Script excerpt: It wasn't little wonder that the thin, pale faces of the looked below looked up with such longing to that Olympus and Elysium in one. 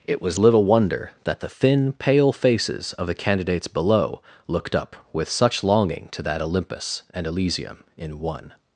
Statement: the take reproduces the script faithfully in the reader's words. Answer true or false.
false